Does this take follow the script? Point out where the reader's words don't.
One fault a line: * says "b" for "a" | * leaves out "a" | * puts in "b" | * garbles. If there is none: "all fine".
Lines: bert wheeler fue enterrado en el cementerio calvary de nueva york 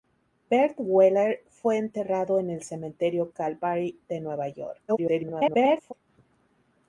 * garbles